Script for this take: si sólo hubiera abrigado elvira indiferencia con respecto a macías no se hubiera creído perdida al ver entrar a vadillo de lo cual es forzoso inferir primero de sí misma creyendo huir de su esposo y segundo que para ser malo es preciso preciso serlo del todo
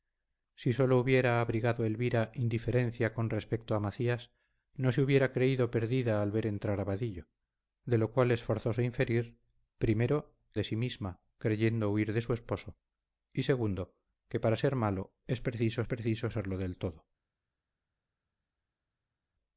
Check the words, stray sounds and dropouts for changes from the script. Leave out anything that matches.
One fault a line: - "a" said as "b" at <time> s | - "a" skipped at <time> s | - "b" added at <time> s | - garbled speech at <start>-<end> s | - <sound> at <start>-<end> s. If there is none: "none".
none